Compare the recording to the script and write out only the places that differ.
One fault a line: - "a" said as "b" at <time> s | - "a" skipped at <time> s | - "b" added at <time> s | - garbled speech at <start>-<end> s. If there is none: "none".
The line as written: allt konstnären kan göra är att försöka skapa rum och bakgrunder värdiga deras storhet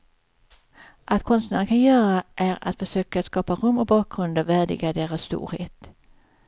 none